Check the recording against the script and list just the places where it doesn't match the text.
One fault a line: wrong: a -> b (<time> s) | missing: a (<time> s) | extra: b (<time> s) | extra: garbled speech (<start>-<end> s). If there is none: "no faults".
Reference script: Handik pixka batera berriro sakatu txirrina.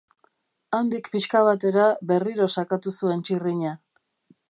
extra: zuen (3.0 s)